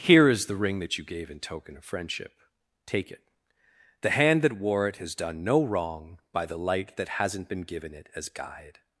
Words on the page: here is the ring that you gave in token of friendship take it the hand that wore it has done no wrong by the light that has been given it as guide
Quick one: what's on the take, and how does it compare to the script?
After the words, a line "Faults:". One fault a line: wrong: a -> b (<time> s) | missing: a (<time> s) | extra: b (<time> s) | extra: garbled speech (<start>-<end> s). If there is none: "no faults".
here is the ring that you gave in token of friendship take it the hand that wore it has done no wrong by the light that hasn't been given it as guide
Faults:
wrong: has -> hasn't (7.1 s)